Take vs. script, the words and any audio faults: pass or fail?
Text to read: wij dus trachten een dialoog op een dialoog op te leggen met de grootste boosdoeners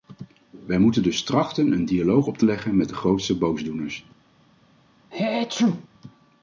fail